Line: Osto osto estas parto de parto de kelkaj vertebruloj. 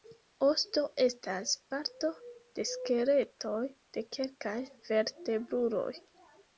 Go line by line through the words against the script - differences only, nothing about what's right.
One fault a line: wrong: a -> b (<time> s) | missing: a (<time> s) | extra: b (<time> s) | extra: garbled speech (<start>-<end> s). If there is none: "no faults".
missing: osto (0.8 s)
wrong: parto -> skeletoj (2.7 s)